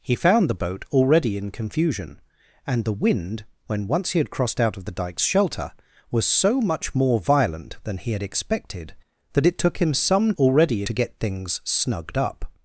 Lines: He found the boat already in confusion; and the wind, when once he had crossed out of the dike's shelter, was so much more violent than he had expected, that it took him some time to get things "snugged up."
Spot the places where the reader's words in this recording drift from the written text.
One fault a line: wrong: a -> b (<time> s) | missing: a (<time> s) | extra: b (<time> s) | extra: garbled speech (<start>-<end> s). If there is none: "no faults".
wrong: time -> already (10.4 s)